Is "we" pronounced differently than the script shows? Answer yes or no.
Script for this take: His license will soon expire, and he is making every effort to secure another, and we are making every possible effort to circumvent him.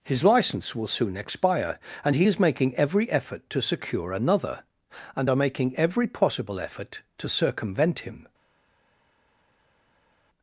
yes